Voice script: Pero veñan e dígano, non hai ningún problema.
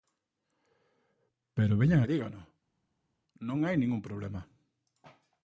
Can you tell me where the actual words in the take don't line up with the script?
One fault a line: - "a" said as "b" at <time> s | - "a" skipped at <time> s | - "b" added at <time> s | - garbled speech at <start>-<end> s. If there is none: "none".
none